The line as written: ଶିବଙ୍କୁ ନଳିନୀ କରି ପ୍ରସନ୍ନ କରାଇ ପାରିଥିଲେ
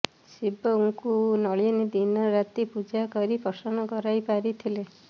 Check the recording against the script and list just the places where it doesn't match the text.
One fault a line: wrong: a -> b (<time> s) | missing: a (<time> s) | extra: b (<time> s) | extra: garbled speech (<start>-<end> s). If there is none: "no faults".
extra: ଦିନ ରାତି ପୂଜା (2.0 s)